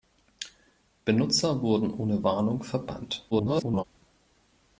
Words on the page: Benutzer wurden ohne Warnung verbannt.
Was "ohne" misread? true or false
false